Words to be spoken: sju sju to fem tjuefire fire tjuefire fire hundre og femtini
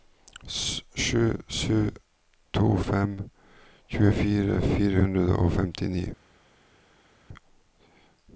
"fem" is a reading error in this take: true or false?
false